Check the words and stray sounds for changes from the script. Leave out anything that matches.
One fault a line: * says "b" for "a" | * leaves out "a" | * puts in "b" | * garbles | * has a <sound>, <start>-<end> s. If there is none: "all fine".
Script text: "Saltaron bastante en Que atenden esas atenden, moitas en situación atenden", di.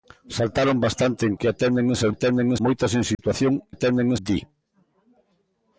* has a dropout, 3.1-3.2 s